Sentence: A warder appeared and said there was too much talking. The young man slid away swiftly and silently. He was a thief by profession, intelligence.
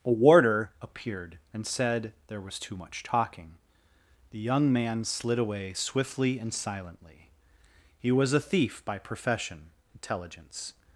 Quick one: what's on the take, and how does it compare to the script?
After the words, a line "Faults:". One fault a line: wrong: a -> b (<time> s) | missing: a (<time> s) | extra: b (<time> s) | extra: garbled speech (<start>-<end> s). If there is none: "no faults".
A warder appeared and said there was too much talking. The young man slid away swiftly and silently. He was a thief by profession, intelligence.
Faults:
no faults